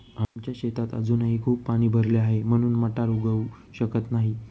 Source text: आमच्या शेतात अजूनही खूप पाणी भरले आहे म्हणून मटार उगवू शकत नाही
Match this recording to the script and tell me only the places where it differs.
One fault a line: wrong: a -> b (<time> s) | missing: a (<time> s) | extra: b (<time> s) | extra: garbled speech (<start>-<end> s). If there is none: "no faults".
no faults